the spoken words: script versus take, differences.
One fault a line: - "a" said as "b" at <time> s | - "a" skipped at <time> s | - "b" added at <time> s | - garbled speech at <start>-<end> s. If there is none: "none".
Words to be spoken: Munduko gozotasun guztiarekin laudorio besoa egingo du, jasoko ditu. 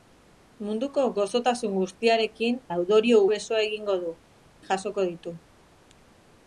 none